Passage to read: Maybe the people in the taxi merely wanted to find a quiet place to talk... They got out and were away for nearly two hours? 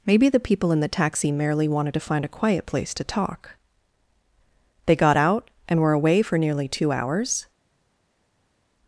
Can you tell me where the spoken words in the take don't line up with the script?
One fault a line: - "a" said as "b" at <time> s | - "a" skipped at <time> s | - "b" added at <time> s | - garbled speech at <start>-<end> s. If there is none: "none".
none